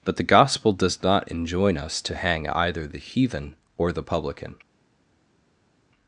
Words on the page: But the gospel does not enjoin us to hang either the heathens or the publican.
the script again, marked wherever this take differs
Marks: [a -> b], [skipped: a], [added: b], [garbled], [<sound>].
But the gospel does not enjoin us to hang either the [heathens -> heathen] or the publican.